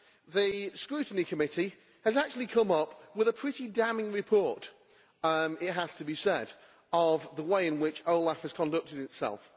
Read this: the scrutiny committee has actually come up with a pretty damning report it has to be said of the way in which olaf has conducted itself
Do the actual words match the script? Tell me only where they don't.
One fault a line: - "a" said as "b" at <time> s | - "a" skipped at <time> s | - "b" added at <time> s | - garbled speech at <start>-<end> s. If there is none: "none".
none